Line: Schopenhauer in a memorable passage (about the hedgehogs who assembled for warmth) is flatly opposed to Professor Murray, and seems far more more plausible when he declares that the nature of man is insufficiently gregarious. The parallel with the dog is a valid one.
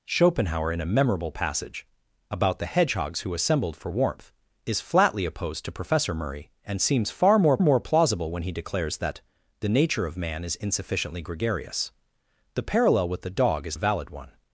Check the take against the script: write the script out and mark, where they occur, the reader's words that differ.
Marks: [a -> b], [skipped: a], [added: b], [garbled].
Schopenhauer in a memorable passage (about the hedgehogs who assembled for warmth) is flatly opposed to Professor Murray, and seems far more more plausible when he declares that the nature of man is insufficiently gregarious. The parallel with the dog is a valid one.